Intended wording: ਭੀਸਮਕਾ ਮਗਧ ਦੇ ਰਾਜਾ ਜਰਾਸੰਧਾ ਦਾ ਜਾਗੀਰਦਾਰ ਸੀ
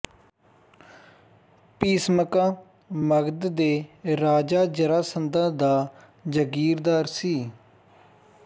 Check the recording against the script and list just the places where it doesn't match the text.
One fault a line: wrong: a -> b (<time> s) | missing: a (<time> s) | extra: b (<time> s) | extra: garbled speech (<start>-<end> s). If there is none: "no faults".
no faults